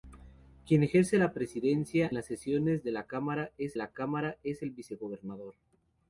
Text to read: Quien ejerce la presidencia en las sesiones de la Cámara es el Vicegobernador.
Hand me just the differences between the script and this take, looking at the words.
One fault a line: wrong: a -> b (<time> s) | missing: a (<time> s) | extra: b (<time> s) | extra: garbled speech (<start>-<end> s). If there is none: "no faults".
missing: en (2.1 s)
extra: la Cámara es (3.7 s)